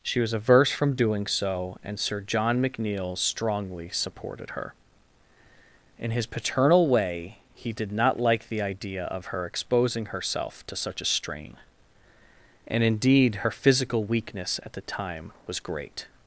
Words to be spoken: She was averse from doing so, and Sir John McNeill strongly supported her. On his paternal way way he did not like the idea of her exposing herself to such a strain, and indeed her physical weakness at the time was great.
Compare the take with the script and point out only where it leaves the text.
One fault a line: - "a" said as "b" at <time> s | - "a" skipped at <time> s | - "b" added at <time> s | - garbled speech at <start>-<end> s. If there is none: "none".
- "On" said as "In" at 6.0 s
- "way" skipped at 7.3 s